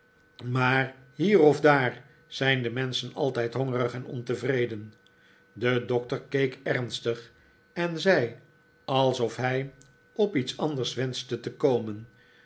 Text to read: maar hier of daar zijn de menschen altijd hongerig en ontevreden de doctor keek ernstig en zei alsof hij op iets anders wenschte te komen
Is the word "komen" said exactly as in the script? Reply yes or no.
yes